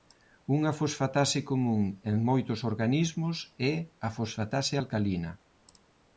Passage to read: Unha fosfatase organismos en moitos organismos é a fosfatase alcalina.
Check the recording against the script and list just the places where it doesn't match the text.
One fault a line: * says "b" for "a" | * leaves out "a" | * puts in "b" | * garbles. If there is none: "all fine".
* says "común" for "organismos"